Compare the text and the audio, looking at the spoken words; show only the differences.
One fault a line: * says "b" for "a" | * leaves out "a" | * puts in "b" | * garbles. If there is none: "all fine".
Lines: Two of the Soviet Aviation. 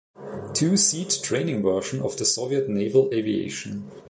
* puts in "seat training version"
* puts in "Naval"